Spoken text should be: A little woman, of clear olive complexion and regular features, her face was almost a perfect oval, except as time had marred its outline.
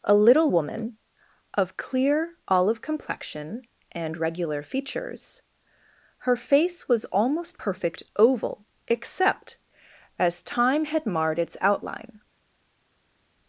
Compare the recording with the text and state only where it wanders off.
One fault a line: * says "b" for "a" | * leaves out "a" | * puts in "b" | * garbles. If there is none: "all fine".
* leaves out "a"